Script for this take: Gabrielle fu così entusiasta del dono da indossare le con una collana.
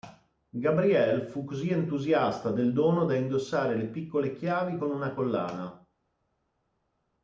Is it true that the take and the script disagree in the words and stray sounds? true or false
true